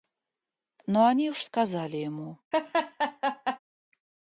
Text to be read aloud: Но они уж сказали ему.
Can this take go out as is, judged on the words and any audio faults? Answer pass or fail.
fail